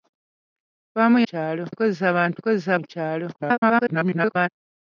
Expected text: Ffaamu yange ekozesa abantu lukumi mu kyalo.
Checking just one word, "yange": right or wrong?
wrong